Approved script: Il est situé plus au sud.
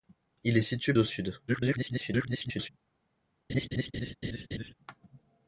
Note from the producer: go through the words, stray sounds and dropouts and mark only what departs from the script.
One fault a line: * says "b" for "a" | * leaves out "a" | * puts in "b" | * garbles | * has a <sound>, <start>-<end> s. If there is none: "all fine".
* leaves out "plus"
* garbles
* has a laugh, 3.5-4.7 s